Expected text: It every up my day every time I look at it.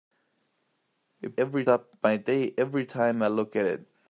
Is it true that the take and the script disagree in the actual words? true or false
false